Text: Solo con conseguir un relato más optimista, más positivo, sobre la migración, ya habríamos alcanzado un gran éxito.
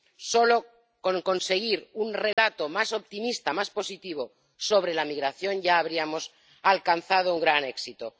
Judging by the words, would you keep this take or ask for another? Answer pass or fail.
pass